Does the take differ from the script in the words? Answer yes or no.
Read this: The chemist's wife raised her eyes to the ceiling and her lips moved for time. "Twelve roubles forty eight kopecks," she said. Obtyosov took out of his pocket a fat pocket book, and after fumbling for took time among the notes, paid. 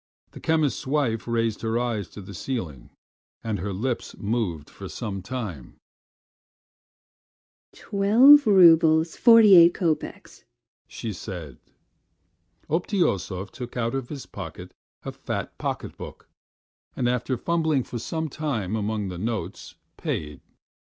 yes